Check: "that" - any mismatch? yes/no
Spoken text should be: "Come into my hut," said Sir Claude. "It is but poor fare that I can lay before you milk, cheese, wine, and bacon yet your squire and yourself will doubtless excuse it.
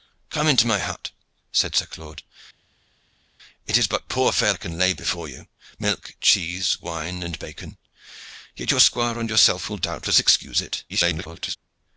yes